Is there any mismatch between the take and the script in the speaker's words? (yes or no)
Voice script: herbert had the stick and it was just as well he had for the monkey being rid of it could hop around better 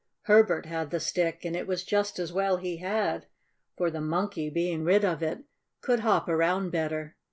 no